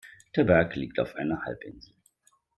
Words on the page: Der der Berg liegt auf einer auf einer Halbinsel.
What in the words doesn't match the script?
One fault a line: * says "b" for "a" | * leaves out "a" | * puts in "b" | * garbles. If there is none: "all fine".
* leaves out "der"
* leaves out "auf einer"